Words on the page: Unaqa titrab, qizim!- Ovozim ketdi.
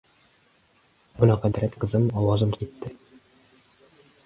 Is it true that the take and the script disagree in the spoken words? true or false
false